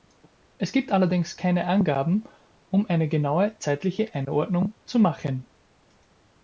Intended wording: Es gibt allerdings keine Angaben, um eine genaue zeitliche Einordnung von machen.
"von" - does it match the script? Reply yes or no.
no